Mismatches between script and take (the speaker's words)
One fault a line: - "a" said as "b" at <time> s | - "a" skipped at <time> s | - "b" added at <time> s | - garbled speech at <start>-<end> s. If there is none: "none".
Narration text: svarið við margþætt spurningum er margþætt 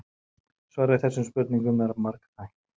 - "margþætt" said as "þessum" at 1.0 s